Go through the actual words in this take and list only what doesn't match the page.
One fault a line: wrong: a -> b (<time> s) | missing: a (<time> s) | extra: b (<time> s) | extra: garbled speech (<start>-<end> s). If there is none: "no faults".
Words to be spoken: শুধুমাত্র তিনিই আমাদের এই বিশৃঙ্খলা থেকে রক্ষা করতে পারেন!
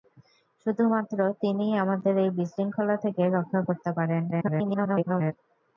extra: garbled speech (4.3-5.3 s)